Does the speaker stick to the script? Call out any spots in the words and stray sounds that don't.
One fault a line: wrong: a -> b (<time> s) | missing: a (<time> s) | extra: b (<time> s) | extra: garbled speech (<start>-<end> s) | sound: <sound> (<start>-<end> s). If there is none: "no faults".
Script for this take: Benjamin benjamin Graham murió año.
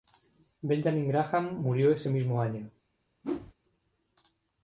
missing: benjamin (1.1 s)
extra: ese mismo (1.9 s)
sound: whoosh (3.2-3.5 s)